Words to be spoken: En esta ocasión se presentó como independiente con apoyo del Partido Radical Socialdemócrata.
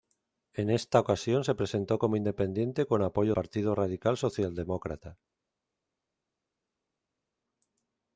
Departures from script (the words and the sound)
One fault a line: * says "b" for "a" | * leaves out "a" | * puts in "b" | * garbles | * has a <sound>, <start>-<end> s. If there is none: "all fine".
* leaves out "del"